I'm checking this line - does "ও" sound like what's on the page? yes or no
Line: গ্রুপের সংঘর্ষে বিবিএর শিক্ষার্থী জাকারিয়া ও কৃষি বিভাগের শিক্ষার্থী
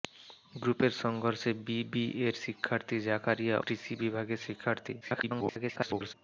no